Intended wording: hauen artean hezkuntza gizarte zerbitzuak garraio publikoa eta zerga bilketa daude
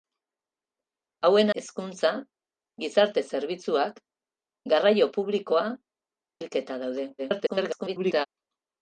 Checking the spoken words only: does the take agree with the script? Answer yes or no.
no